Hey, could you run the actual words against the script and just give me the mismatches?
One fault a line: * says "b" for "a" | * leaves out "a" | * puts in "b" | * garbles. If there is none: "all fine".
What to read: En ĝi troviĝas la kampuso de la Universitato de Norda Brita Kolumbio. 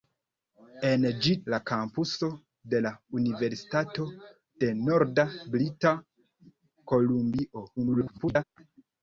* leaves out "troviĝas"
* garbles